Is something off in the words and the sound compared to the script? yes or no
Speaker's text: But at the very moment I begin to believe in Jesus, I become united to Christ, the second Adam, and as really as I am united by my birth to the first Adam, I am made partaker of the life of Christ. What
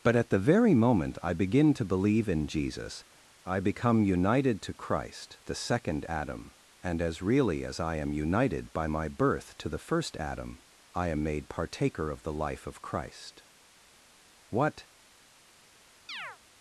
yes